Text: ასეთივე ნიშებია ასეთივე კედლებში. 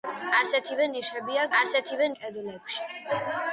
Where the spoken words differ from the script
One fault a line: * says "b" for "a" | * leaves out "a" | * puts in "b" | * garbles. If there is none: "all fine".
all fine